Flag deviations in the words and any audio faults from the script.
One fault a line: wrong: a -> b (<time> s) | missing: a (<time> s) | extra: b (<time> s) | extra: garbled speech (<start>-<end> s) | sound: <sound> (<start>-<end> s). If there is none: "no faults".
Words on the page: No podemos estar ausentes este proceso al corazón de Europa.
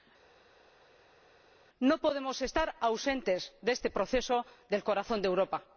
extra: de (3.6 s)
wrong: al -> del (4.7 s)